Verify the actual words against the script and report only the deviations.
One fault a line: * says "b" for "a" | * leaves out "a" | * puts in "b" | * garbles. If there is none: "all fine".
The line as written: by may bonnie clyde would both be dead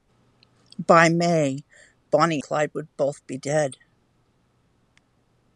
all fine